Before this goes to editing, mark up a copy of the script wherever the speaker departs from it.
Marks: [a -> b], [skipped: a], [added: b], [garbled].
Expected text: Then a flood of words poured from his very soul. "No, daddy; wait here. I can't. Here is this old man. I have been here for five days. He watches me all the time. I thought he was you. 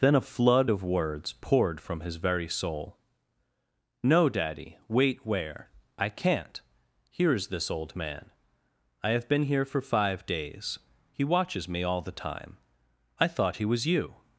Then a flood of words poured from his very soul. "No, daddy; wait [here. -> where] I can't. Here is this old man. I have been here for five days. He watches me all the time. I thought he was you.